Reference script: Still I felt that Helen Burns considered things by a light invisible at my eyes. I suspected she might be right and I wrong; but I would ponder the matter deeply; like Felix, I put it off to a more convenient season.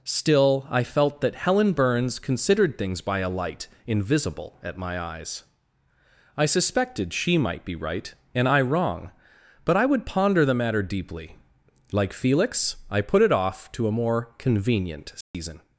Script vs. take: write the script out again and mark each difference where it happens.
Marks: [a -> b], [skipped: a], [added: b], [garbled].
Still I felt that Helen Burns considered things by a light invisible at my eyes. I suspected she might be right and I wrong; but I would ponder the matter deeply; like Felix, I put it off to a more convenient season.